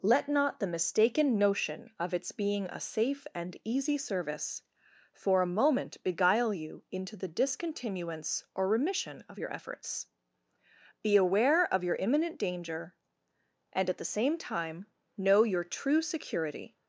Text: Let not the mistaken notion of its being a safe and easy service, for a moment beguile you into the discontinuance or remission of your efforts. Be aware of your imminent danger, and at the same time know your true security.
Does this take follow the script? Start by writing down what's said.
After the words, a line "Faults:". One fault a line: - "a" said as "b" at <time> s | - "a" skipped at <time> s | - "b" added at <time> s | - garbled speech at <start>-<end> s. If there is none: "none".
Let not the mistaken notion of its being a safe and easy service, for a moment beguile you into the discontinuance or remission of your efforts. Be aware of your imminent danger, and at the same time know your true security.
Faults:
none